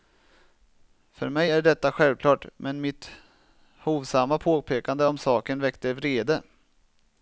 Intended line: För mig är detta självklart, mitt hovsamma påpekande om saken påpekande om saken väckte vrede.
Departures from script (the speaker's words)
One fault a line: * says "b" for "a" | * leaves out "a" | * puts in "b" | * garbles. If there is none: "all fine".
* puts in "men"
* leaves out "påpekande om saken"